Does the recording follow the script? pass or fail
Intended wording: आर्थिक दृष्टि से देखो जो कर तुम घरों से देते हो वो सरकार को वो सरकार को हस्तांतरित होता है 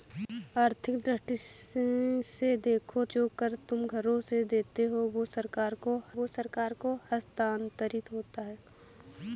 pass